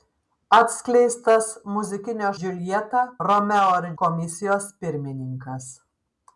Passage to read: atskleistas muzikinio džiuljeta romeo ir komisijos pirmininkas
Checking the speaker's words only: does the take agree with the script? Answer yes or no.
yes